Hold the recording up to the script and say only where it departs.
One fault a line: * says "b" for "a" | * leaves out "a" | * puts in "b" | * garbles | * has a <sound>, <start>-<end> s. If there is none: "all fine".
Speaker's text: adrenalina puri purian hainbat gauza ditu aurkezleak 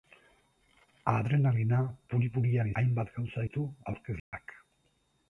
* has a dropout, 4.2-4.3 s